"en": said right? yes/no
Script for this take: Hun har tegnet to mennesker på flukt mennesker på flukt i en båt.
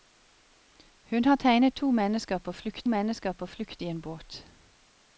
yes